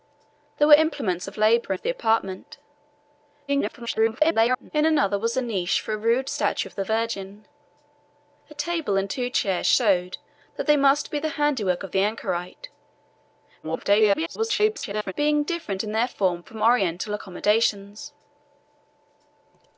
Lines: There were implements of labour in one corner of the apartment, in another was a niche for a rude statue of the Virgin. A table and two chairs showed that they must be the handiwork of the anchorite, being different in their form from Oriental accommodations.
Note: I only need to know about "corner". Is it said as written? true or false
false